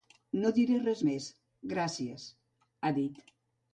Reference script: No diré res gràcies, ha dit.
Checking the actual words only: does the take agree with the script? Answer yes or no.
no